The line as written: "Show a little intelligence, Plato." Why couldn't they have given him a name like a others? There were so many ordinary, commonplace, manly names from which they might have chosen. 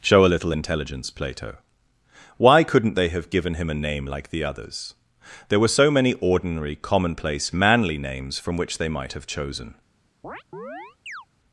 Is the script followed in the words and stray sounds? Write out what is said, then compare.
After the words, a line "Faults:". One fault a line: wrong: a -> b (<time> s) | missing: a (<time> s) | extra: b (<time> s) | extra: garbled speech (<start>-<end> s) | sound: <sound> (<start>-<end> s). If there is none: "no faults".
"Show a little intelligence, Plato." Why couldn't they have given him a name like the others? There were so many ordinary, commonplace, manly names from which they might have chosen.
Faults:
wrong: a -> the (4.3 s)
sound: chirp (10.2-11.3 s)